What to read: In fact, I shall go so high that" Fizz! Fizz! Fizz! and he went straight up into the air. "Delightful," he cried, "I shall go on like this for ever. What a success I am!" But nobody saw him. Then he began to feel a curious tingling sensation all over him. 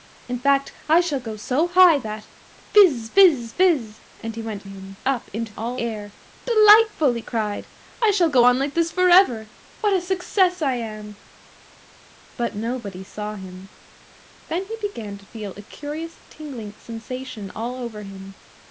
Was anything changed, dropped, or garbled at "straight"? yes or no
yes